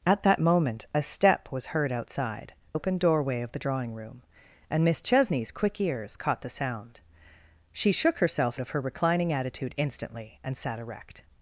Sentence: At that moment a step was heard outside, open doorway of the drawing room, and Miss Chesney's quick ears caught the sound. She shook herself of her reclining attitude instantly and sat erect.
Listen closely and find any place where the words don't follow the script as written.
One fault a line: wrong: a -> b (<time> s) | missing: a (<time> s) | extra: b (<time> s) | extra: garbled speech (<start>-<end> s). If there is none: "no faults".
no faults